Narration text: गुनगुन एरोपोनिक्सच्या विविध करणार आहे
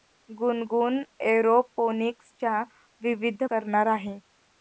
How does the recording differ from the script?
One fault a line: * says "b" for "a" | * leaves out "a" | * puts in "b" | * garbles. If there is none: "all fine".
all fine